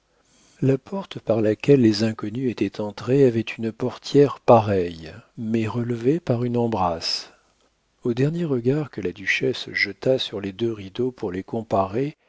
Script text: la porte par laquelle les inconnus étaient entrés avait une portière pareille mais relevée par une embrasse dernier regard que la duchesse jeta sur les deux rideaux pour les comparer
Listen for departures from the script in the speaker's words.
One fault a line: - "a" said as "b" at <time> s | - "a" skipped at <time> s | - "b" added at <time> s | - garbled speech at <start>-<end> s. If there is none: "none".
- "au" added at 8.0 s